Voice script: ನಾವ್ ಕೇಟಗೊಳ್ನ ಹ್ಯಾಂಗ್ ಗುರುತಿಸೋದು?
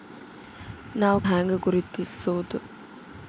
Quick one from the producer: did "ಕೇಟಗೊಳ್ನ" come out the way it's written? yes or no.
no